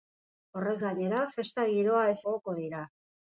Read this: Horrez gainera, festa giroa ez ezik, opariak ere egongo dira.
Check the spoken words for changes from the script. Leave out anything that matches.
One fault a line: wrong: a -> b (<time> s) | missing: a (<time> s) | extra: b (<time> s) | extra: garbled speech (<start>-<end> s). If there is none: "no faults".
missing: ezik opariak ere (2.2 s)